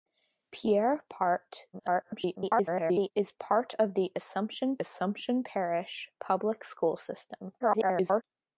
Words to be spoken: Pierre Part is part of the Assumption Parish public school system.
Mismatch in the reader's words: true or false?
true